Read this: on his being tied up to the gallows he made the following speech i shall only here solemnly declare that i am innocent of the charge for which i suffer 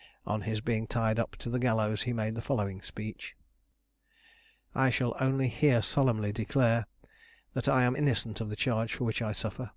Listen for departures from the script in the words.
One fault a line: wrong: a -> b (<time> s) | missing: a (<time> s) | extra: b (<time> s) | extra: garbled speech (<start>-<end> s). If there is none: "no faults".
no faults